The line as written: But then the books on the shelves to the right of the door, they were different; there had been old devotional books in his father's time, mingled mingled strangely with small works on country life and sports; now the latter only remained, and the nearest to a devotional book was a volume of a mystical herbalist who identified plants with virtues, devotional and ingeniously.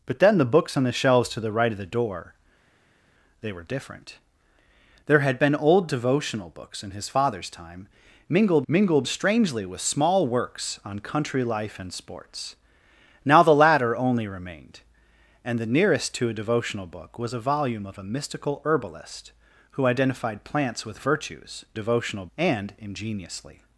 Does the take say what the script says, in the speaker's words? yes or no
yes